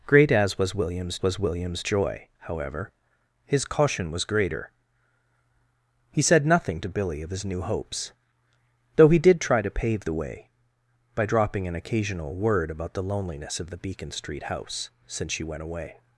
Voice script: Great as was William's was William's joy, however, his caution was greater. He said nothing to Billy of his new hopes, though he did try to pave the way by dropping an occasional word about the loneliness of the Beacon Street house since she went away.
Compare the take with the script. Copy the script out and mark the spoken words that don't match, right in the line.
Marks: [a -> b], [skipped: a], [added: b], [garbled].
Great as was William's was William's joy, however, his caution was greater. He said nothing to Billy of his new hopes, though he did try to pave the way by dropping an occasional word about the loneliness of the Beacon Street house since she went away.